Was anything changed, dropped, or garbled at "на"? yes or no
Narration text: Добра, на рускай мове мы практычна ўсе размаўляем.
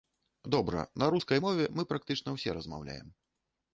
no